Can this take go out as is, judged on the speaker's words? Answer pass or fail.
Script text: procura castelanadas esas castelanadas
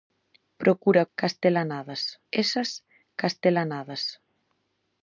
pass